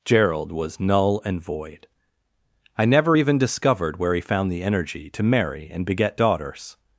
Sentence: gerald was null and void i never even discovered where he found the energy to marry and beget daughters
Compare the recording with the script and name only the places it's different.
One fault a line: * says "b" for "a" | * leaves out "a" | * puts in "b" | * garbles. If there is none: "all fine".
all fine